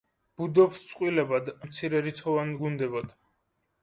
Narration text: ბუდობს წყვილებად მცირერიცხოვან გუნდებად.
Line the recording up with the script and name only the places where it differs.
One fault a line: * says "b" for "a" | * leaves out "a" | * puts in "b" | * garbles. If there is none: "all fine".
all fine